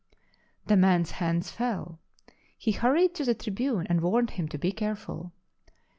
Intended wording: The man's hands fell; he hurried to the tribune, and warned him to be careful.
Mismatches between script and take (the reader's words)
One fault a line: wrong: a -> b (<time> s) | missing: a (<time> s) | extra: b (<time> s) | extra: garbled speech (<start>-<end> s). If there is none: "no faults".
no faults